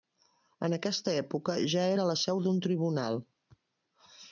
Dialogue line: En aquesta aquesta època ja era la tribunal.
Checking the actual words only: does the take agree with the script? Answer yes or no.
no